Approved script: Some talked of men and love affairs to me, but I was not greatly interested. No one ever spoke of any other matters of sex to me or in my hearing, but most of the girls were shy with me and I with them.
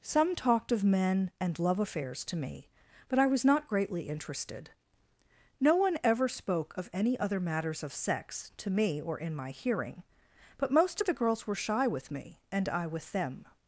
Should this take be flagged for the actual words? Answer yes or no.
no